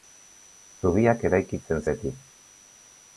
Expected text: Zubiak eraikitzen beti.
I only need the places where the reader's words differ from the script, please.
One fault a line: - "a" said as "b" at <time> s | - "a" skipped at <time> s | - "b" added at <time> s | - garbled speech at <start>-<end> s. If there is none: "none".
none